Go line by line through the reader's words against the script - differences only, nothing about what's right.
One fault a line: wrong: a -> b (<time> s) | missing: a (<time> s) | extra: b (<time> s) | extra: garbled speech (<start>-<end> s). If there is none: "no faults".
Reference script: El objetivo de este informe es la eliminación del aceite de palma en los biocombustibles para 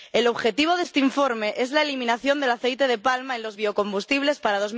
no faults